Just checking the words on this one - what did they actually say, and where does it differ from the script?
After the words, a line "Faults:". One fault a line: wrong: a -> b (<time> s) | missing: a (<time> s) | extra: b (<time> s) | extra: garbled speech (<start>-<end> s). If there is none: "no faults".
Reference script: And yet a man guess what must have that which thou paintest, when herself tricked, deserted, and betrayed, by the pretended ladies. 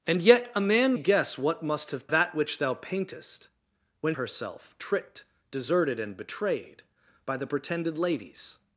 And yet a man guess what must have that which thou paintest, when herself tricked, deserted, and betrayed, by the pretended ladies.
Faults:
no faults